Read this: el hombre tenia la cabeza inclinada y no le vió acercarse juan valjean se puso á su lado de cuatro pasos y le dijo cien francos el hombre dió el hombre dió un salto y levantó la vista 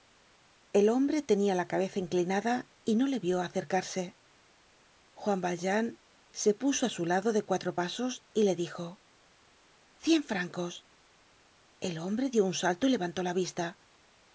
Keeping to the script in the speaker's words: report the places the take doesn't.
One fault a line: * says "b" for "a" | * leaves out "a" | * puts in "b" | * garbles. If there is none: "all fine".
* leaves out "el hombre dió"